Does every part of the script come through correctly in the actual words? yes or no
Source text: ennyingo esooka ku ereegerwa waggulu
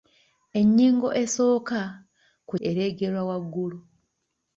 yes